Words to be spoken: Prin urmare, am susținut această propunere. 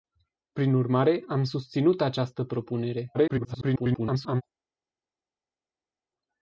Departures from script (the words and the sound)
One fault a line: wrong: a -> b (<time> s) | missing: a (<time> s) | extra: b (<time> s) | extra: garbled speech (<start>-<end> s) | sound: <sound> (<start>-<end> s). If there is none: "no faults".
extra: garbled speech (3.1-4.4 s)